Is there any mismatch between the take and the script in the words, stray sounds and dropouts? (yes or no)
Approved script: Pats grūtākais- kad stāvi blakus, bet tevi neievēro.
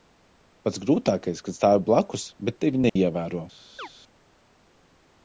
yes